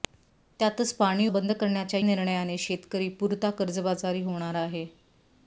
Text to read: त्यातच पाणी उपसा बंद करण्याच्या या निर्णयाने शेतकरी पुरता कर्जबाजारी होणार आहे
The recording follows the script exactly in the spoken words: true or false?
false